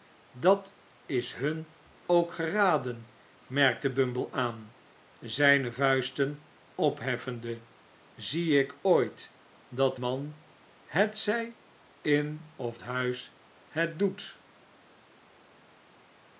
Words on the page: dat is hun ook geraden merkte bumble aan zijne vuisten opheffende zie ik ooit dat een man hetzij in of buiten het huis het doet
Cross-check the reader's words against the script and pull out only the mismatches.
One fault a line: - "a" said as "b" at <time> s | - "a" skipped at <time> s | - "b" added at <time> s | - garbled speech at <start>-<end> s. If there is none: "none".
- "een" skipped at 10.0 s
- "buiten het" skipped at 12.8 s